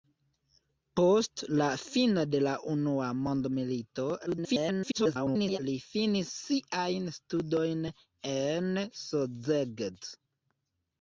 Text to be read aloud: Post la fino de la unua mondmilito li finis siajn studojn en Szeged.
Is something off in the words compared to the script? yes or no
yes